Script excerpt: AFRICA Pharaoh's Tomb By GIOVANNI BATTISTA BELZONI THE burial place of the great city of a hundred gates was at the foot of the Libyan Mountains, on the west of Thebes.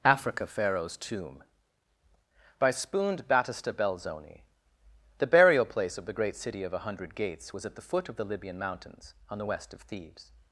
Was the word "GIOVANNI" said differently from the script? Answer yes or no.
yes